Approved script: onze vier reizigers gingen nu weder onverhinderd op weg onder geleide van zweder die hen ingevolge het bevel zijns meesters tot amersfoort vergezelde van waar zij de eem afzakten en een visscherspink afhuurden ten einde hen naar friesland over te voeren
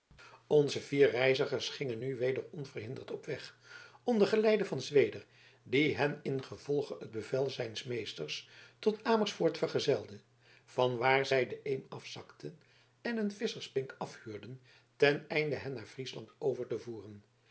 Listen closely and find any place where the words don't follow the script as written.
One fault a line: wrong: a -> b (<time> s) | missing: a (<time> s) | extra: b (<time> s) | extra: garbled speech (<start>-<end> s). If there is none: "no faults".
no faults